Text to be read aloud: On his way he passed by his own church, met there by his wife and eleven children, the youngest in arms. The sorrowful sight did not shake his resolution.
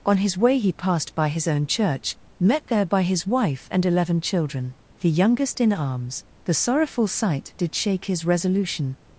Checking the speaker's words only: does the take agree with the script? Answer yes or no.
no